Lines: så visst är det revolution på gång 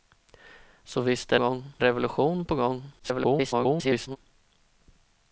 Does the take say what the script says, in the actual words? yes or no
no